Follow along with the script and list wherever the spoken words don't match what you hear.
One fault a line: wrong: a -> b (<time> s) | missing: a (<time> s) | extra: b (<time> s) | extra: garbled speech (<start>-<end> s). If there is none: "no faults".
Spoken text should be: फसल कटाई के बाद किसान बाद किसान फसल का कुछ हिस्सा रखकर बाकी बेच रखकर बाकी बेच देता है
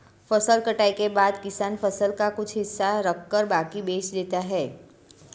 missing: बाद किसान (1.8 s)
missing: रखकर बाकी बेच (4.1 s)